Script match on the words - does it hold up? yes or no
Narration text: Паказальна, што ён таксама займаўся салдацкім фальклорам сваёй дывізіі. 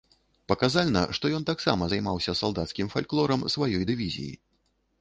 yes